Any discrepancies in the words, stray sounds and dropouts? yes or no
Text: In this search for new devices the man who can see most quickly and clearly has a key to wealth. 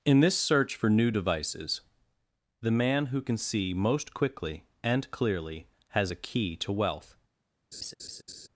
yes